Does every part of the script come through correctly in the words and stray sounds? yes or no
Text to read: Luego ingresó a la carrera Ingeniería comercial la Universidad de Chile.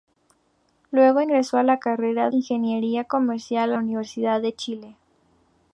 yes